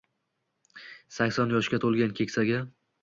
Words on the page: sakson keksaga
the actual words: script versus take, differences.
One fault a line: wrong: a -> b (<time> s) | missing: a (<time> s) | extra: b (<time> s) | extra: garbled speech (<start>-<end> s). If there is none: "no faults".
extra: yoshga to‘lgan (1.6 s)